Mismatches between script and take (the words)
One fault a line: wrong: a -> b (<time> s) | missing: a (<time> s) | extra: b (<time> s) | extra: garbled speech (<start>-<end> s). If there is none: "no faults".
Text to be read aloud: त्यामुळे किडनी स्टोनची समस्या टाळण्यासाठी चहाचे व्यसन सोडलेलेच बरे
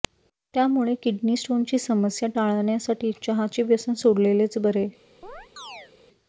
no faults